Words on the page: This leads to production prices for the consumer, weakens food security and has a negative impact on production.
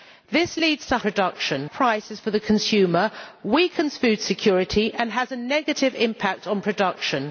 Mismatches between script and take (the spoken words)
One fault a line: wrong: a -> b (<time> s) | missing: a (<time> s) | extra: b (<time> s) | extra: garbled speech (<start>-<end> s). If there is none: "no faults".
no faults